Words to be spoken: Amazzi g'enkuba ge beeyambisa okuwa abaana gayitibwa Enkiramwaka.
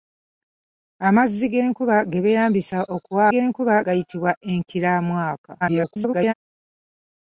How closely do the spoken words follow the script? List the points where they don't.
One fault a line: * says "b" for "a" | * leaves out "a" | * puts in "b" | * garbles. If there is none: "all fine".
* says "g'enkuba" for "abaana"
* garbles